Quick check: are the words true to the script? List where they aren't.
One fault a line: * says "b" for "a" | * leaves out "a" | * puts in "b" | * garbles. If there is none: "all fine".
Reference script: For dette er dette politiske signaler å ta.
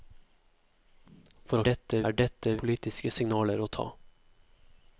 all fine